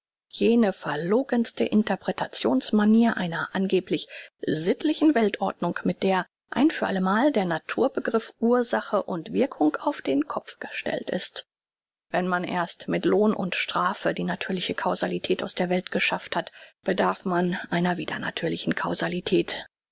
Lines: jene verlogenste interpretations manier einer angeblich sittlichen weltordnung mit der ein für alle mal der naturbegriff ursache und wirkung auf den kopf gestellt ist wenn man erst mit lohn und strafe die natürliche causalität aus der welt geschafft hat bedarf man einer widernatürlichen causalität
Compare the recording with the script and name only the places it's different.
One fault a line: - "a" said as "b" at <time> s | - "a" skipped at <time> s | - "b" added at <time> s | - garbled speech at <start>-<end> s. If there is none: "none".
none